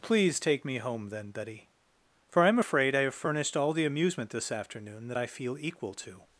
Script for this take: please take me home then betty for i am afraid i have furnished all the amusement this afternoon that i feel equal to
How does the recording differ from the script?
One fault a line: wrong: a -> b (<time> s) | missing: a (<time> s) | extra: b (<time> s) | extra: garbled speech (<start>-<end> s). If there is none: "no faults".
no faults